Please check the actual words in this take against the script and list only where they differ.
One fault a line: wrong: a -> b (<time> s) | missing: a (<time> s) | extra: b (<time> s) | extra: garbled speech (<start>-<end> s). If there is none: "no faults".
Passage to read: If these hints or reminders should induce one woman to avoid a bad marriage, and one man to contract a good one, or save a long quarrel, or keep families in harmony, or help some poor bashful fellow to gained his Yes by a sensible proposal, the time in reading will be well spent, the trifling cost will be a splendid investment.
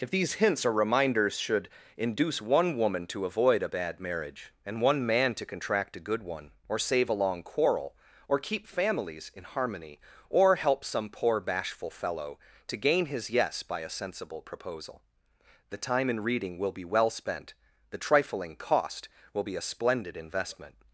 wrong: gained -> gain (12.8 s)